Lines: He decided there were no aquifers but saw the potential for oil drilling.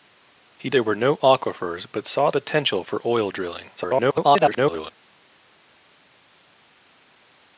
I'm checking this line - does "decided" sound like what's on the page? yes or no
no